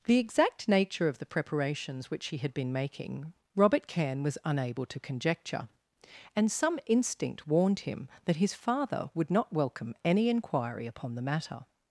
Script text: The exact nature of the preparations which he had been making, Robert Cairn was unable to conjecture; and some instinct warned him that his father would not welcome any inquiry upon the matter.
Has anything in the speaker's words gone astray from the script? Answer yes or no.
no